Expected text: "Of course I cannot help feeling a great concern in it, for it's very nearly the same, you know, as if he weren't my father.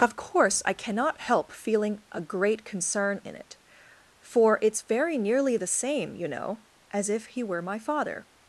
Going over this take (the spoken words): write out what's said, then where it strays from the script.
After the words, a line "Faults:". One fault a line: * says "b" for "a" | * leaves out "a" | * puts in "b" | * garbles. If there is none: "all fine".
"Of course I cannot help feeling a great concern in it, for it's very nearly the same, you know, as if he were my father.
Faults:
* says "were" for "weren't"